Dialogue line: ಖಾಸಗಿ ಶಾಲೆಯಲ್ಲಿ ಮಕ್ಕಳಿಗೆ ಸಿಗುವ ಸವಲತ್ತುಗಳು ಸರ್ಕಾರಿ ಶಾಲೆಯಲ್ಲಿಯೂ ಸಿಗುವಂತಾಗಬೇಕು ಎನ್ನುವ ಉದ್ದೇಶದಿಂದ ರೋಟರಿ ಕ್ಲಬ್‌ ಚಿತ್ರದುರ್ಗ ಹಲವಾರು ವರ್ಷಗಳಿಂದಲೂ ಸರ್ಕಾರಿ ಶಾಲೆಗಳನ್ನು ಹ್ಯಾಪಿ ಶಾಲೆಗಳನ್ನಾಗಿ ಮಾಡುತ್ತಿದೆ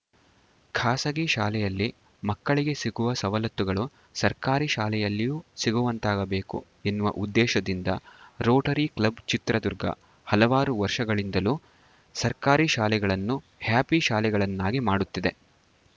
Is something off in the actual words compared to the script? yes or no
no